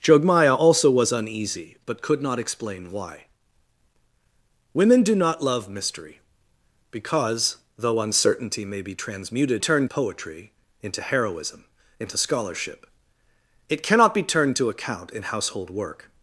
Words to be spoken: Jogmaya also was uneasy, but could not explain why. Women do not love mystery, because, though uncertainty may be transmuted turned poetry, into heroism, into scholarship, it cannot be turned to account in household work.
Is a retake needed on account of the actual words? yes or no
no